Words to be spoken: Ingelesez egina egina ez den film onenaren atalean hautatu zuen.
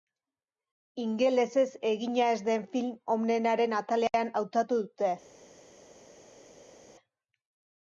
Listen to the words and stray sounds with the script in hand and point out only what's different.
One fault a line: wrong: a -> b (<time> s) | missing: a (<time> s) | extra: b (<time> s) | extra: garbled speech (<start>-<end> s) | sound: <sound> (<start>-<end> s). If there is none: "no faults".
missing: egina (2.3 s)
wrong: zuen -> dute (4.8 s)